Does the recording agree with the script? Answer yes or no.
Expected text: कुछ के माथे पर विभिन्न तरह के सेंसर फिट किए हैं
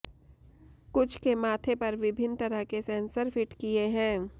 yes